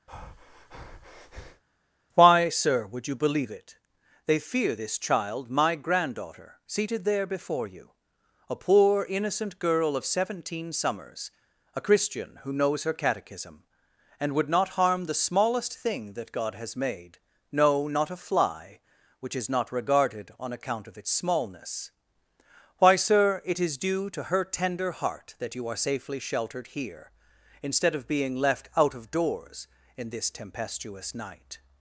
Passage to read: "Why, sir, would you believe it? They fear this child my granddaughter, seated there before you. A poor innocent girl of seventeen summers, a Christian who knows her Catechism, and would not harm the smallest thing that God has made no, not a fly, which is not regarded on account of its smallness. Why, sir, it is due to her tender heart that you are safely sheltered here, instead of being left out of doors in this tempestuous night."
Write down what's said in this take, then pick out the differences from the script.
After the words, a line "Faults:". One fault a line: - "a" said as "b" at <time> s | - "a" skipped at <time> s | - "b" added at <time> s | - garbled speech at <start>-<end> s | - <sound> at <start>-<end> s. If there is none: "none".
"Why, sir, would you believe it? They fear this child my granddaughter, seated there before you. A poor innocent girl of seventeen summers, a Christian who knows her Catechism, and would not harm the smallest thing that God has made no, not a fly, which is not regarded on account of its smallness. Why, sir, it is due to her tender heart that you are safely sheltered here, instead of being left out of doors in this tempestuous night."
Faults:
- breath at 0.1-1.6 s